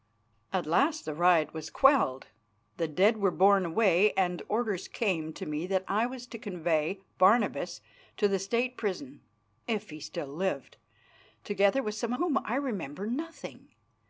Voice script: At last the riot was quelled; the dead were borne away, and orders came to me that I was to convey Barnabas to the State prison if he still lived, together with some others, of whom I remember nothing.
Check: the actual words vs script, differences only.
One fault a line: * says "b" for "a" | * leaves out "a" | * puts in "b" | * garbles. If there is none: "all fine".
* leaves out "others of"